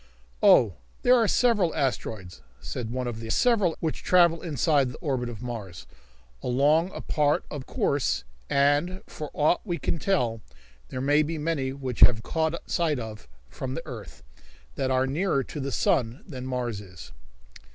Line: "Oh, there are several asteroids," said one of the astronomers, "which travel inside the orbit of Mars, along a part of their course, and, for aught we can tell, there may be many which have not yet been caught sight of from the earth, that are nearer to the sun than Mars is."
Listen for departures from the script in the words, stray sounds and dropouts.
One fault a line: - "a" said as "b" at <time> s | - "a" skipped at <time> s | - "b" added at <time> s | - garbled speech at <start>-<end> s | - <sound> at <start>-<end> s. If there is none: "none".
- "astronomers" said as "several" at 3.3 s
- "their" skipped at 7.7 s
- "not yet been" skipped at 12.2 s